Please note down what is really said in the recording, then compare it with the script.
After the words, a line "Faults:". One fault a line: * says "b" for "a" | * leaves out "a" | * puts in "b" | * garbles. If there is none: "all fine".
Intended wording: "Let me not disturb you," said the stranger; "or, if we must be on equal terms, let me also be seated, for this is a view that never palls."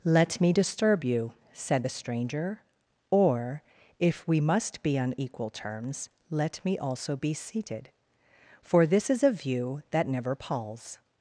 "Let me disturb you," said the stranger; "or, if we must be on equal terms, let me also be seated, for this is a view that never palls."
Faults:
* leaves out "not"